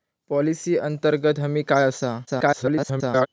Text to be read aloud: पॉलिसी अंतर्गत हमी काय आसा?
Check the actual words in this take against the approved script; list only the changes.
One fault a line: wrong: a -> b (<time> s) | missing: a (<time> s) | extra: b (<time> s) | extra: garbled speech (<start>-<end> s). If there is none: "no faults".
extra: garbled speech (2.3-3.3 s)